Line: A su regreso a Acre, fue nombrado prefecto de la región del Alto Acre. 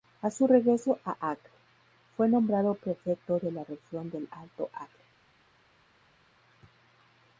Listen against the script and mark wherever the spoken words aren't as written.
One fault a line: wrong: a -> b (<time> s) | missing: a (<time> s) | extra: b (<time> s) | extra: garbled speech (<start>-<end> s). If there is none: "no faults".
no faults